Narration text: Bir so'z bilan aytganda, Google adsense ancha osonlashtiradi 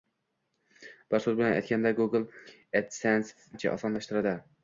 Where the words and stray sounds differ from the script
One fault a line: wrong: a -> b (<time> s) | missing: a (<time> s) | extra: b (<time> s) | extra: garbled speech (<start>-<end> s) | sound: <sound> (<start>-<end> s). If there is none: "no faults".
no faults